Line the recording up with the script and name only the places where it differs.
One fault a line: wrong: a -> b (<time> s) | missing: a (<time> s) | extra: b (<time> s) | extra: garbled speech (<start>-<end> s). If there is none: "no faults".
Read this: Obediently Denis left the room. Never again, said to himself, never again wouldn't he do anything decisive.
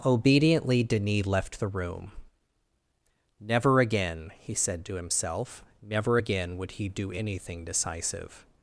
extra: he (4.4 s)
wrong: wouldn't -> would (6.6 s)